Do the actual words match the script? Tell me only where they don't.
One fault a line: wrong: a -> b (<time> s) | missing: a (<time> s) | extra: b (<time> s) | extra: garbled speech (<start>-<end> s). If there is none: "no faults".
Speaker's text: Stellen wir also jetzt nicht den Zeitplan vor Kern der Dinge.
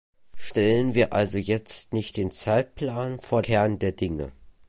no faults